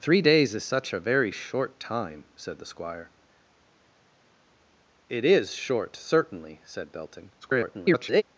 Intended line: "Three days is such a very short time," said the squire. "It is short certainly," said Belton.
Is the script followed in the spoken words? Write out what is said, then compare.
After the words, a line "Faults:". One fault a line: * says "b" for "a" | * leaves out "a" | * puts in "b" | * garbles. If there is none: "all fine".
"Three days is such a very short time," said the squire. "It is short certainly," said Belton. [garbled]
Faults:
* garbles